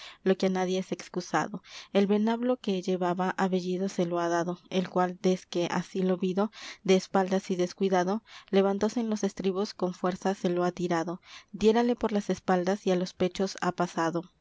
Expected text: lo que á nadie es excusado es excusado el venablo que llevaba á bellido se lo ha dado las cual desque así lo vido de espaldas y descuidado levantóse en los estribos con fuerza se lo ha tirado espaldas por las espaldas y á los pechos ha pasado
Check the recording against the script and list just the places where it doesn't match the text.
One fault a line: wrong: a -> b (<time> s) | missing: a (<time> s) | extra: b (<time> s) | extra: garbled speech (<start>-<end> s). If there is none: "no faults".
missing: es excusado (1.6 s)
wrong: las -> el (4.7 s)
wrong: espaldas -> diérale (11.5 s)